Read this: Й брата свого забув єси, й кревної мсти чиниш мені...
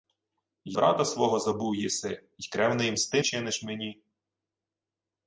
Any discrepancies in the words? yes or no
no